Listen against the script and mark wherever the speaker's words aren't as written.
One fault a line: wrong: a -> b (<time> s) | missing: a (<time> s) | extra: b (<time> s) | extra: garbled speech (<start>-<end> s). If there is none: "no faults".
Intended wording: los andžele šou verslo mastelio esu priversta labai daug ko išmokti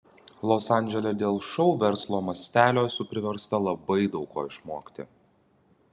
extra: dėl (1.2 s)